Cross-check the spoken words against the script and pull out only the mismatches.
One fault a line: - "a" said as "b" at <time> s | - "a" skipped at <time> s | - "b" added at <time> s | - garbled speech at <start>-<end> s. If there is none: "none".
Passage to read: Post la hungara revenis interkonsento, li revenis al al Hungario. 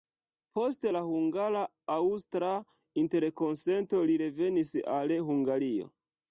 - "revenis" said as "aŭstra" at 2.0 s
- "al" skipped at 5.2 s